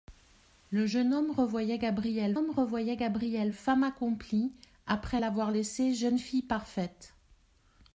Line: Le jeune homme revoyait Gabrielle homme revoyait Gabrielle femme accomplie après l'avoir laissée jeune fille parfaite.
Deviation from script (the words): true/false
false